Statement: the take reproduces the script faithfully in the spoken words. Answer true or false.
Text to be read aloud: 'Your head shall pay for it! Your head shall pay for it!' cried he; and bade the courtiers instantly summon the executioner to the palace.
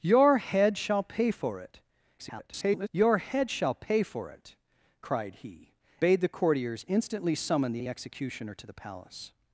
false